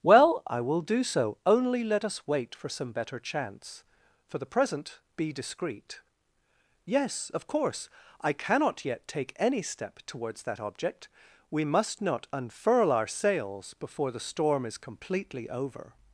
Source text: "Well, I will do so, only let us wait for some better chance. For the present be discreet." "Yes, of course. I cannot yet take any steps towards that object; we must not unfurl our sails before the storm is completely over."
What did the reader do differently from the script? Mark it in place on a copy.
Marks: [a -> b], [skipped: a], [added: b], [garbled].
"Well, I will do so, only let us wait for some better chance. For the present be discreet." "Yes, of course. I cannot yet take any [steps -> step] towards that object; we must not unfurl our sails before the storm is completely over."